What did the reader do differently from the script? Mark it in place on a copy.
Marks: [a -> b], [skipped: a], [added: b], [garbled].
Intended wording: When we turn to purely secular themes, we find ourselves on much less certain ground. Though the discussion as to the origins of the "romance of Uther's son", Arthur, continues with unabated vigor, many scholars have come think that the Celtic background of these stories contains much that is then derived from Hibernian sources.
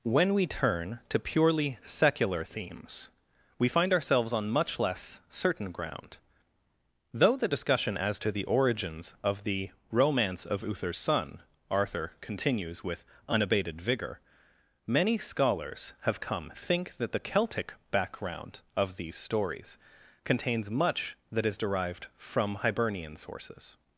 When we turn to purely secular themes, we find ourselves on much less certain ground. Though the discussion as to the origins of the "romance of Uther's son", Arthur, continues with unabated vigor, many scholars have come think that the Celtic background of these stories contains much that is [skipped: then] derived from Hibernian sources.